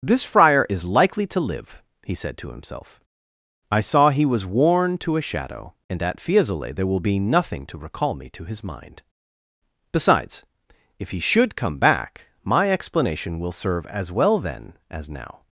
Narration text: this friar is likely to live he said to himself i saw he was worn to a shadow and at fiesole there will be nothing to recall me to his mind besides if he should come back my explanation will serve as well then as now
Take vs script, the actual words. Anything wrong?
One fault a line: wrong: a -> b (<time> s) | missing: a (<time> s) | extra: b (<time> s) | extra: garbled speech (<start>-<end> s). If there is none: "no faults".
no faults